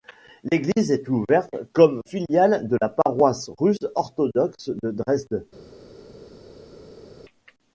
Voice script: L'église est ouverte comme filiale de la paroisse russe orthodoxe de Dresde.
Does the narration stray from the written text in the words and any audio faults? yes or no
no